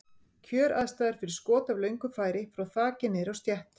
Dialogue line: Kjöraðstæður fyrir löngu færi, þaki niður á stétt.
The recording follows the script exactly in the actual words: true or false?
false